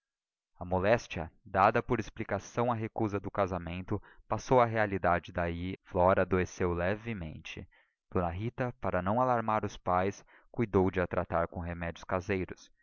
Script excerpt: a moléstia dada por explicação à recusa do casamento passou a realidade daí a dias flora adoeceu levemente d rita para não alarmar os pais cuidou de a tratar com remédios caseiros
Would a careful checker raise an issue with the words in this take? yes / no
yes